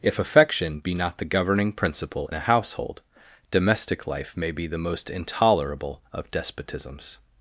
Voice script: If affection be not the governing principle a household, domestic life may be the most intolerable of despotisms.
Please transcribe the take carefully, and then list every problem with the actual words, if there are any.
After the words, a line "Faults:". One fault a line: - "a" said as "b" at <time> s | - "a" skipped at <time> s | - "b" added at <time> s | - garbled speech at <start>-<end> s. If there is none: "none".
If affection be not the governing principle a household, domestic life may be the most intolerable of despotisms.
Faults:
none